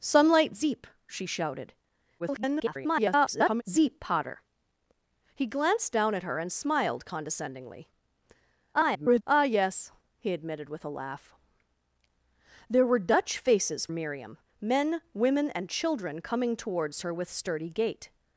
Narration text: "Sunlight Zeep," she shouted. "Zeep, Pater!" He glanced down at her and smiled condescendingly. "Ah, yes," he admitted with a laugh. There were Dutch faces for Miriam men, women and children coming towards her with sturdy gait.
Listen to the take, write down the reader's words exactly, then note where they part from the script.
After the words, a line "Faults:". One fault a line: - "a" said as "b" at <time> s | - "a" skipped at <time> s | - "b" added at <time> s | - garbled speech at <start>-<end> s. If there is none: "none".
"Sunlight Zeep," she shouted. [garbled] "Zeep, Pater!" He glanced down at her and smiled condescendingly. [garbled] "Ah, yes," he admitted with a laugh. There were Dutch faces Miriam men, women and children coming towards her with sturdy gait.
Faults:
- garbled speech at 2.2-3.6 s
- garbled speech at 8.7-9.2 s
- "for" skipped at 13.9 s